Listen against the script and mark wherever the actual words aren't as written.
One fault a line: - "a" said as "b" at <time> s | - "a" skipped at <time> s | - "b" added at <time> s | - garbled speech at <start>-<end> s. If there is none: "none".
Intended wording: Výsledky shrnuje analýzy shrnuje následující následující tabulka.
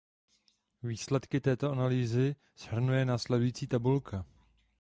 - "shrnuje" said as "této" at 1.4 s
- "následující" skipped at 3.7 s